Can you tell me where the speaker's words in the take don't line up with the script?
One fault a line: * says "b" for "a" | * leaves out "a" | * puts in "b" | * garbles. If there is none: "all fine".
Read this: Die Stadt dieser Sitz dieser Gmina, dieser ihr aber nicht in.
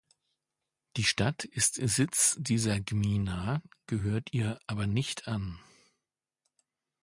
* says "ist" for "dieser"
* says "gehört" for "dieser"
* says "an" for "in"